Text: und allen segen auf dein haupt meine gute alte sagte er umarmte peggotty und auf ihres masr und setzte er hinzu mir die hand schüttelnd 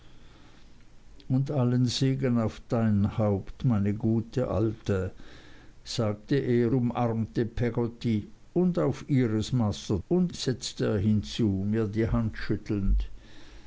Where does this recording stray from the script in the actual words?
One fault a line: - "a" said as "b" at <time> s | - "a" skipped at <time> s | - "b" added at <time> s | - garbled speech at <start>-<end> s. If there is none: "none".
none